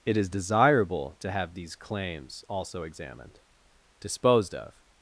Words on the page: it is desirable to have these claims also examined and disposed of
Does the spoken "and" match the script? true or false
false